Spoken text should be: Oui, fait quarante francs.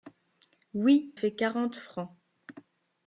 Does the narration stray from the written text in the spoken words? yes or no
no